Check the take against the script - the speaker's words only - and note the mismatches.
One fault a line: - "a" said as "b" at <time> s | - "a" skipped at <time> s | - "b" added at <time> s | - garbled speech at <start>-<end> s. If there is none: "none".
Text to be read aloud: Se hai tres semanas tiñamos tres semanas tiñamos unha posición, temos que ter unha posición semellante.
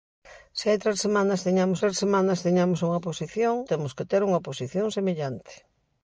none